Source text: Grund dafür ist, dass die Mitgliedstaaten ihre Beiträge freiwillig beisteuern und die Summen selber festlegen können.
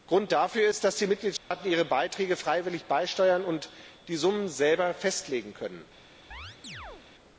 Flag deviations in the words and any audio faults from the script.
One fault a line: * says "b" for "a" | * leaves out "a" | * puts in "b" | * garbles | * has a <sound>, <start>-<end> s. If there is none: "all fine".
* has a dropout, 1.4-1.5 s
* has a chirp, 6.3-7.1 s